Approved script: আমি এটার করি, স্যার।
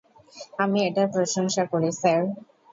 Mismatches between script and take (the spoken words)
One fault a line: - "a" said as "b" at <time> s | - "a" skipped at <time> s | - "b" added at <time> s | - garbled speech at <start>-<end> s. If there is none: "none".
- "প্রশংসা" added at 1.1 s